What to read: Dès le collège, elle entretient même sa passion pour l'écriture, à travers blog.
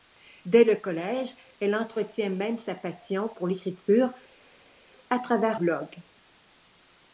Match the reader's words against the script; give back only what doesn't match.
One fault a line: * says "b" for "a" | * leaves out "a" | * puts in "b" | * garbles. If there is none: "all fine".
all fine